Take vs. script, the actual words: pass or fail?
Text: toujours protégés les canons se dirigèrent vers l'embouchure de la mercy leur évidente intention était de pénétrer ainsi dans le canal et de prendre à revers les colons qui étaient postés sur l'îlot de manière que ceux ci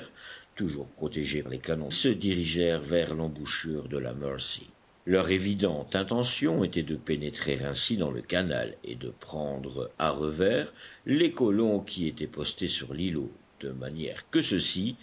pass